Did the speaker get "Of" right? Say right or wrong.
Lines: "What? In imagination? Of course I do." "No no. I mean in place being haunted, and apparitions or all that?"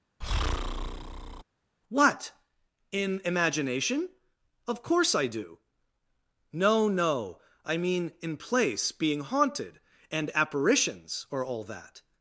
right